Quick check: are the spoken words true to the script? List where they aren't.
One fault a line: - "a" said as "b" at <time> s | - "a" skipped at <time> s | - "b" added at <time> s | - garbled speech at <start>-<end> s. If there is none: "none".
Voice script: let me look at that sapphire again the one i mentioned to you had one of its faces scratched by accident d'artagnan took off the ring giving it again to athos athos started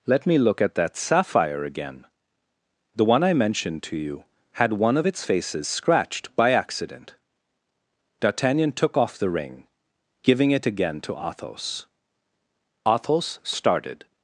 none